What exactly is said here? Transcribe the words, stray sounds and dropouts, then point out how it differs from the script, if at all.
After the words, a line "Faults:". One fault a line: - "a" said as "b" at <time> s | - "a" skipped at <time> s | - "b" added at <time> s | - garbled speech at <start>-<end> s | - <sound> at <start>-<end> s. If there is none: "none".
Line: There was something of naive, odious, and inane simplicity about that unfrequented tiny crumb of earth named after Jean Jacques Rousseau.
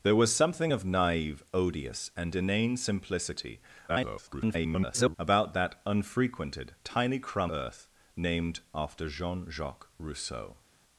There was something of naive, odious, and inane simplicity [garbled] about that unfrequented tiny crumb earth named after Jean Jacques Rousseau.
Faults:
- garbled speech at 3.9-5.2 s
- "of" skipped at 7.5 s